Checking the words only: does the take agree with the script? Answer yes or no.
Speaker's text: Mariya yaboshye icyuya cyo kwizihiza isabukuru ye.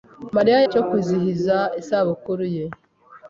no